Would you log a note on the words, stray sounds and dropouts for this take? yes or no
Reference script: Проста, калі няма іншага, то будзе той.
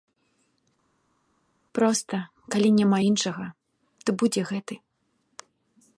yes